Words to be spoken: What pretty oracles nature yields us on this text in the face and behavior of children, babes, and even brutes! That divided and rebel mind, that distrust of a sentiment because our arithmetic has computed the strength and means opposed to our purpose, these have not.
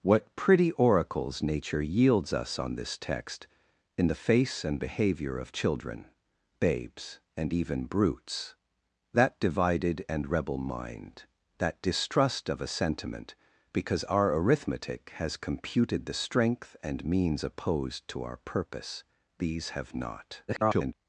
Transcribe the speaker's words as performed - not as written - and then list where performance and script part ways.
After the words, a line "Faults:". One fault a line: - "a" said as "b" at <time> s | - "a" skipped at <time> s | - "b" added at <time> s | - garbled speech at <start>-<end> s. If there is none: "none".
What pretty oracles nature yields us on this text in the face and behavior of children, babes, and even brutes! That divided and rebel mind, that distrust of a sentiment because our arithmetic has computed the strength and means opposed to our purpose, these have not. [garbled]
Faults:
- garbled speech at 20.5-20.9 s